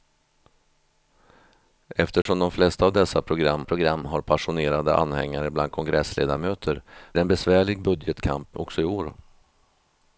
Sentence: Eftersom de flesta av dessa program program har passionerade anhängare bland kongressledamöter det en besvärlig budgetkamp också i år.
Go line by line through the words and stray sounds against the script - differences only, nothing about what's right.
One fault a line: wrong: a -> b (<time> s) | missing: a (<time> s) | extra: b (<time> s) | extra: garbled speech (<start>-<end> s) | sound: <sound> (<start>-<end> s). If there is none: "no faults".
sound: dropout (2.2-2.3 s)